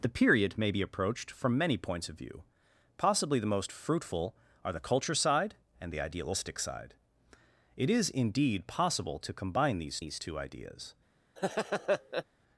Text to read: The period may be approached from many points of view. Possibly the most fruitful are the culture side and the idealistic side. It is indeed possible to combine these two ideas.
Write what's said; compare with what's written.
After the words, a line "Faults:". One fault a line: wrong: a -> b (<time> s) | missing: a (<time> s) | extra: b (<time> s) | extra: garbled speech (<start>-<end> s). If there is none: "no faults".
The period may be approached from many points of view. Possibly the most fruitful are the culture side and the idealistic side. It is indeed possible to combine these these two ideas.
Faults:
extra: these (10.0 s)